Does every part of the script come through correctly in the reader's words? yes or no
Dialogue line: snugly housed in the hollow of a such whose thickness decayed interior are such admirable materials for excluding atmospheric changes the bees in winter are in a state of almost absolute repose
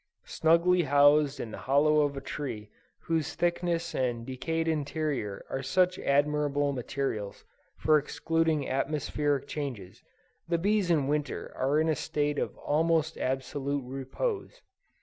no